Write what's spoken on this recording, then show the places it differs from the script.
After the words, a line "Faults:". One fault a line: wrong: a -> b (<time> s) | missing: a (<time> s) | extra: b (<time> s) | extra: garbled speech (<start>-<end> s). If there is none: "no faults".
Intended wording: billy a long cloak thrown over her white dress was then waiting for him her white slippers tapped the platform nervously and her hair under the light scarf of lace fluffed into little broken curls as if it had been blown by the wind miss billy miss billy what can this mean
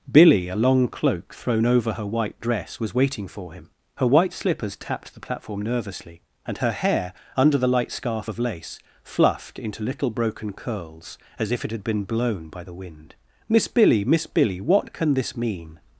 billy a long cloak thrown over her white dress was waiting for him her white slippers tapped the platform nervously and her hair under the light scarf of lace fluffed into little broken curls as if it had been blown by the wind miss billy miss billy what can this mean
Faults:
missing: then (2.9 s)